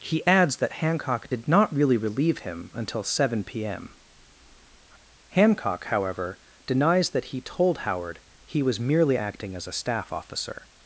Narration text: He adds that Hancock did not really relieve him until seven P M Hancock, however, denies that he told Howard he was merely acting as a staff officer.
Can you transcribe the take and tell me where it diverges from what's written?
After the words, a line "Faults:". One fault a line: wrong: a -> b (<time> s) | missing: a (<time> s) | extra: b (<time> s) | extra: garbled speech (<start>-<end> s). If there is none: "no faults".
He adds that Hancock did not really relieve him until seven P M Hancock, however, denies that he told Howard he was merely acting as a staff officer.
Faults:
no faults